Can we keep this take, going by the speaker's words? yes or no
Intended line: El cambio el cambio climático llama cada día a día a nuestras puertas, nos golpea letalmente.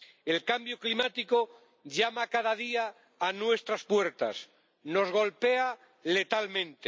no